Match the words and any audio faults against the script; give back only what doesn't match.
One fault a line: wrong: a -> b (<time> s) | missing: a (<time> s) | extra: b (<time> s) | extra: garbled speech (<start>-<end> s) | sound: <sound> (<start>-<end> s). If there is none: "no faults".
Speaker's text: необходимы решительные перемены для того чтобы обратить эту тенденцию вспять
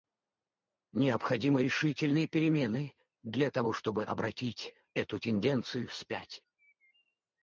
no faults